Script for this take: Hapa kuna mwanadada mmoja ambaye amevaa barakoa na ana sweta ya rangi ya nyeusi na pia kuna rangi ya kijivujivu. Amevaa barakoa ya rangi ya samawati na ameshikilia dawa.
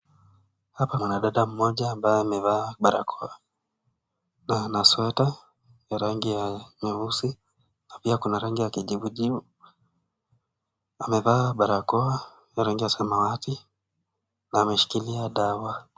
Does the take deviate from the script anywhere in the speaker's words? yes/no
yes